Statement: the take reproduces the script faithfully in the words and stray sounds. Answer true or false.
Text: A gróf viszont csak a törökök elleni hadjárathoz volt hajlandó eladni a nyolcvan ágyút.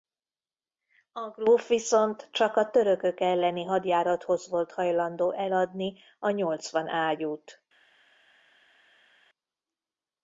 true